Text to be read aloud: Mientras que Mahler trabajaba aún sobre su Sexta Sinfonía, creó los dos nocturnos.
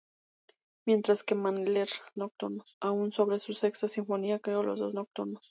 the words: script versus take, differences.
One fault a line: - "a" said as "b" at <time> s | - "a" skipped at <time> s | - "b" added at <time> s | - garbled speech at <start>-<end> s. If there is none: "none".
- "trabajaba" said as "nocturnos" at 2.2 s